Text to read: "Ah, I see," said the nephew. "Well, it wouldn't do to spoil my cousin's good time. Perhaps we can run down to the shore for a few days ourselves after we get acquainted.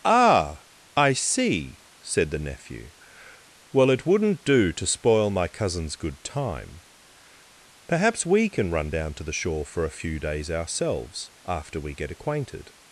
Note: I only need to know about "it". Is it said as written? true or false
true